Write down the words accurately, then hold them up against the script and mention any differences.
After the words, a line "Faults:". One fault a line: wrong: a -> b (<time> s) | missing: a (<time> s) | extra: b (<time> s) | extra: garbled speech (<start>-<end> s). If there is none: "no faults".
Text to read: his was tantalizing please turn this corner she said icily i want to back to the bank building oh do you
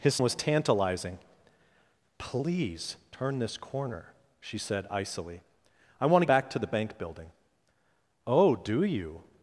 his was tantalizing please turn this corner she said icily i want to back to the bank building oh do you
Faults:
no faults